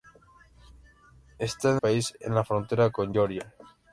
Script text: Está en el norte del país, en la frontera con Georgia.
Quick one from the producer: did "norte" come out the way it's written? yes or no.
no